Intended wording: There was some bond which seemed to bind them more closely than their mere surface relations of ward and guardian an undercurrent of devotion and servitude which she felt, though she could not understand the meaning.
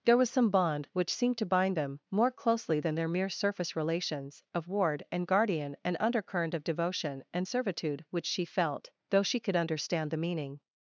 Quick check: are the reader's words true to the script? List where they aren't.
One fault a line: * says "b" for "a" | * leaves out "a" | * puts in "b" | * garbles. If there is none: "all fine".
* leaves out "not"